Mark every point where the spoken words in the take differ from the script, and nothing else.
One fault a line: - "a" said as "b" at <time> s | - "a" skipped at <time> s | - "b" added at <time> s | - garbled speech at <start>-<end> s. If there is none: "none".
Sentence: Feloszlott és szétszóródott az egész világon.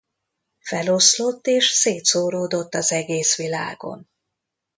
none